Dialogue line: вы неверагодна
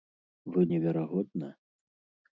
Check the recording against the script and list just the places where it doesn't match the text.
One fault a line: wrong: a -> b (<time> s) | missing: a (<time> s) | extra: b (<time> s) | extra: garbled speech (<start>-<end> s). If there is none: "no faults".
no faults